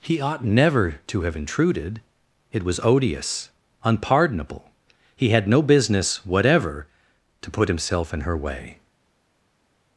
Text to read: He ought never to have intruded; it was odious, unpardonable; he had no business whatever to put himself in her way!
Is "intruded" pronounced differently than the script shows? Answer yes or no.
no